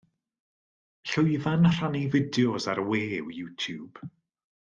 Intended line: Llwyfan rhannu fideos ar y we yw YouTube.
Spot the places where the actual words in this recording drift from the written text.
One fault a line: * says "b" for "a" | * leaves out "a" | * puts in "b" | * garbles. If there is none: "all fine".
all fine